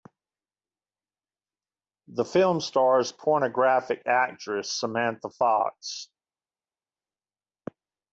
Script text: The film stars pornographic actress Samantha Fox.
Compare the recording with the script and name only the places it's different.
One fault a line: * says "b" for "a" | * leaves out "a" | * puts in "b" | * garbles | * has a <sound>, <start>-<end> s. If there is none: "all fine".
all fine